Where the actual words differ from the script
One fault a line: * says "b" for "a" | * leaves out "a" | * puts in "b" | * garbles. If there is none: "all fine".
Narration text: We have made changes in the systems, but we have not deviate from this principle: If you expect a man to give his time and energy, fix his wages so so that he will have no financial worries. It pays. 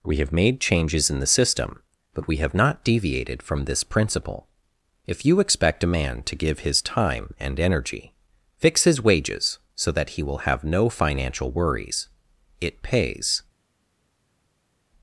* says "system" for "systems"
* says "deviated" for "deviate"
* leaves out "so"